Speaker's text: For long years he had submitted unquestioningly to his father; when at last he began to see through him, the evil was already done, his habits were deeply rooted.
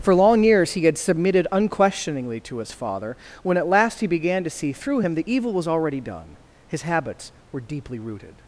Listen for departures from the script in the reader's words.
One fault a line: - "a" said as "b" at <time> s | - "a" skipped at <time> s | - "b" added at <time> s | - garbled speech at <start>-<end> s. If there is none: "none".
none